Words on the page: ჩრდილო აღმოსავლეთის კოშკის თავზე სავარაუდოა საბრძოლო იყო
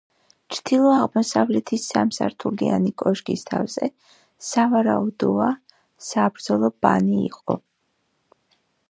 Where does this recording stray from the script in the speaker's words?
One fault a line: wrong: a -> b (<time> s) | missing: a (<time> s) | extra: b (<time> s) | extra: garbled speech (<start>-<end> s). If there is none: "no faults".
extra: სამსართულიანი (1.9 s)
extra: ბანი (6.9 s)